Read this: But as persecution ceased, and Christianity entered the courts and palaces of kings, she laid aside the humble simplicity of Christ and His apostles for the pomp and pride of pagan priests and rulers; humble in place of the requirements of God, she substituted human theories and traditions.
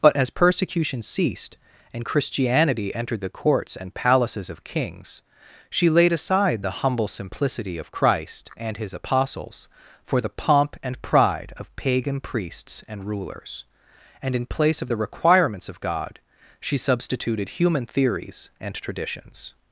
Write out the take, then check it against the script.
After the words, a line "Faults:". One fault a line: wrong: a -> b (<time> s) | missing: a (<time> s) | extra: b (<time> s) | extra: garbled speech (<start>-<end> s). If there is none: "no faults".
But as persecution ceased, and Christianity entered the courts and palaces of kings, she laid aside the humble simplicity of Christ and His apostles for the pomp and pride of pagan priests and rulers; and in place of the requirements of God, she substituted human theories and traditions.
Faults:
wrong: humble -> and (14.2 s)